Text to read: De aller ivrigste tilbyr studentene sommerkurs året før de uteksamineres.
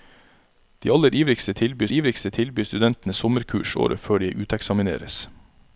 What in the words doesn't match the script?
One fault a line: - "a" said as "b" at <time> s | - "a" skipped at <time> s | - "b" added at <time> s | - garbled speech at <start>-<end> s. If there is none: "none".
- "ivrigste tilbyr" added at 1.9 s